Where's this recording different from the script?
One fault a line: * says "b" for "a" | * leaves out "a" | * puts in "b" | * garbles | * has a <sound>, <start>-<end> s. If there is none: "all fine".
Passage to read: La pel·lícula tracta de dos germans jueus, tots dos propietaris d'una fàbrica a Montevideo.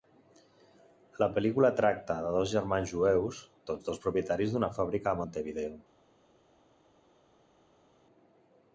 all fine